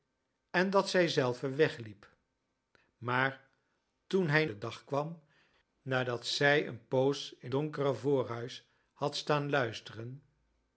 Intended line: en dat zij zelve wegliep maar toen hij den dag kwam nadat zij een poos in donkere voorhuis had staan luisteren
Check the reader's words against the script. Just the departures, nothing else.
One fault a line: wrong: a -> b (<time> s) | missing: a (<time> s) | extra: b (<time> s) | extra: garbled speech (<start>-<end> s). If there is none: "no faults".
no faults